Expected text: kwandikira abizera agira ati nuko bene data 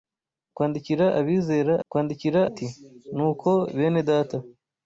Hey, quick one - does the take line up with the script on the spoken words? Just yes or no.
no